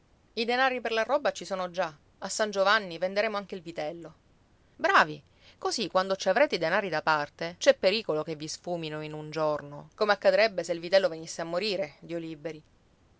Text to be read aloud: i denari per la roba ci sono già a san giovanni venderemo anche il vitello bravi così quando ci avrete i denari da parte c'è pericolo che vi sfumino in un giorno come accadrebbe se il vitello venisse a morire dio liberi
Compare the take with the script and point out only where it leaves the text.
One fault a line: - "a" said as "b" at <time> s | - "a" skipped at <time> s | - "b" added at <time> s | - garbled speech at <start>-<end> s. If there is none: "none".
none